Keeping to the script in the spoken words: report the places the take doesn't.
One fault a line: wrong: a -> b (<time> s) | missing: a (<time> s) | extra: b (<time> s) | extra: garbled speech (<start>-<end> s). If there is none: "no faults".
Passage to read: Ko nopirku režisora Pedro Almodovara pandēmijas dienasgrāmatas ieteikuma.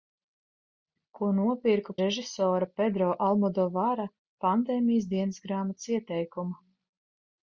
no faults